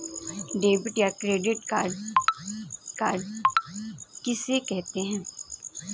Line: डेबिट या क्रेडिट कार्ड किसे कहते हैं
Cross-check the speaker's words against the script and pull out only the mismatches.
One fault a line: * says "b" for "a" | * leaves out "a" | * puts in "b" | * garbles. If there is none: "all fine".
* puts in "कार्ड"